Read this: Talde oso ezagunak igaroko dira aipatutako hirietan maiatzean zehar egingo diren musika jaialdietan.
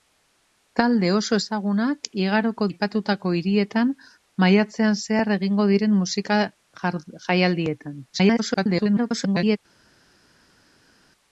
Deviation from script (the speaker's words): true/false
true